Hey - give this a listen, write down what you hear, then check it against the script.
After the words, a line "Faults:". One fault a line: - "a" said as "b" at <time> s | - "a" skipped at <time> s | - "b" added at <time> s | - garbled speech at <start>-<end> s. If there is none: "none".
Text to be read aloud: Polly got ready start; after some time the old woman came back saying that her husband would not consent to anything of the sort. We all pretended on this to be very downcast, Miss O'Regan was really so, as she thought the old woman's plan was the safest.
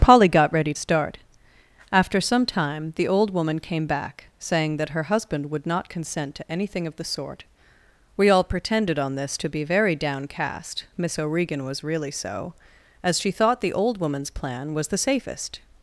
Polly got ready start; after some time the old woman came back saying that her husband would not consent to anything of the sort. We all pretended on this to be very downcast, Miss O'Regan was really so, as she thought the old woman's plan was the safest.
Faults:
none